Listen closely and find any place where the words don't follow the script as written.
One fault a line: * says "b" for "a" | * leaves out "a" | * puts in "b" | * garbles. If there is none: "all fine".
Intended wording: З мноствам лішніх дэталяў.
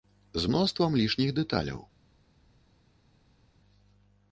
all fine